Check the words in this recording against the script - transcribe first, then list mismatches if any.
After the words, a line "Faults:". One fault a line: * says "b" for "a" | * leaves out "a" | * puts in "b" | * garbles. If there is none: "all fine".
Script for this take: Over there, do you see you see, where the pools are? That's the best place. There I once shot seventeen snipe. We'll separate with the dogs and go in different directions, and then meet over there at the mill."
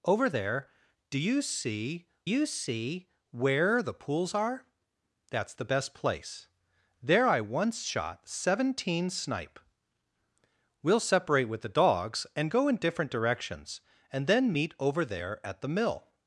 Over there, do you see you see, where the pools are? That's the best place. There I once shot seventeen snipe. We'll separate with the dogs and go in different directions, and then meet over there at the mill."
Faults:
all fine